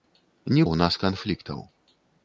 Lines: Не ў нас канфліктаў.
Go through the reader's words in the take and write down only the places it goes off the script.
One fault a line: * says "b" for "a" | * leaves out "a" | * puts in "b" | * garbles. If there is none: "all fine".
all fine